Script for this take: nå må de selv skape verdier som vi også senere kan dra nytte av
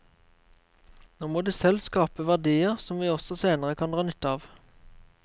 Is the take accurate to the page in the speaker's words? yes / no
yes